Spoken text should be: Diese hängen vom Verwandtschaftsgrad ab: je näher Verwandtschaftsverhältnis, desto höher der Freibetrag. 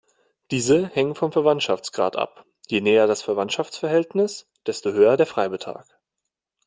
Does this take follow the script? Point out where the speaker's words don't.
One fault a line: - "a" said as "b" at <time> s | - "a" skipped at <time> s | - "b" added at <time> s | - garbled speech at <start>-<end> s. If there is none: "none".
- "das" added at 3.1 s